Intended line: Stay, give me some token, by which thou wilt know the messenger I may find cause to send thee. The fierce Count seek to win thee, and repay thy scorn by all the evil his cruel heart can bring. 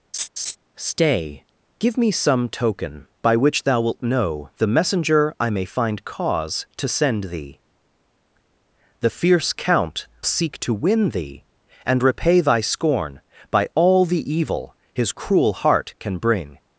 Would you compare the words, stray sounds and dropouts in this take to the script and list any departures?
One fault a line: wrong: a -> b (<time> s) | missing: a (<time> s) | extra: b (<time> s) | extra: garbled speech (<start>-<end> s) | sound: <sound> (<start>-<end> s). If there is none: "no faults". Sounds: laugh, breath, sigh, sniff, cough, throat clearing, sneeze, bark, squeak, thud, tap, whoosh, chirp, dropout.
sound: laugh (0.1-0.6 s)